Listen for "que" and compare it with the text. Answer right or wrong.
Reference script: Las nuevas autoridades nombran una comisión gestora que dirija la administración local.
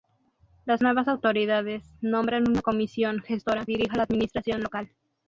wrong